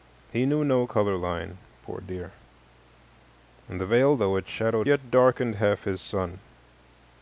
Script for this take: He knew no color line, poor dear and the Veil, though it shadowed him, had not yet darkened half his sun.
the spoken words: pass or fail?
fail